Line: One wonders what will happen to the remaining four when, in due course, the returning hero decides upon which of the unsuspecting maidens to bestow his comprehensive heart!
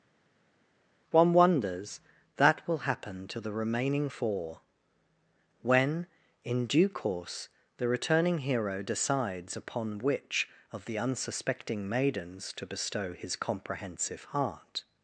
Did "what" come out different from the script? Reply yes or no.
yes